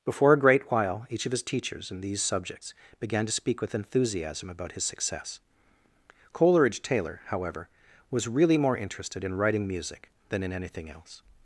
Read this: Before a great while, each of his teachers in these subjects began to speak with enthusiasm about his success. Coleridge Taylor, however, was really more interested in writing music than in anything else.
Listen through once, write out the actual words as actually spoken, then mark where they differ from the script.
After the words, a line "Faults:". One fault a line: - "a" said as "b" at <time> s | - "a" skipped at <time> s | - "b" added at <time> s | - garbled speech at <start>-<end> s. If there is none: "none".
Before a great while, each of his teachers in these subjects began to speak with enthusiasm about his success. Coleridge Taylor, however, was really more interested in writing music than in anything else.
Faults:
none